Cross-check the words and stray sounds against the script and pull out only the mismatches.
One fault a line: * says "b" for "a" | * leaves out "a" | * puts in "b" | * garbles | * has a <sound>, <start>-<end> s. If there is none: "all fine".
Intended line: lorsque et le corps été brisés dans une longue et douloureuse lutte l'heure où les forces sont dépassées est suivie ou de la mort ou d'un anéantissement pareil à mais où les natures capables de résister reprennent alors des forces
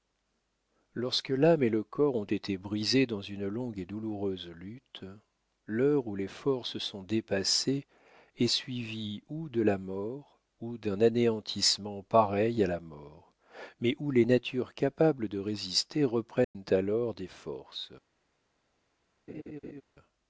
* puts in "l'âme"
* puts in "ont"
* puts in "la mort"
* has a dropout, 16.4-16.5 s
* has a laugh, 19.3-19.8 s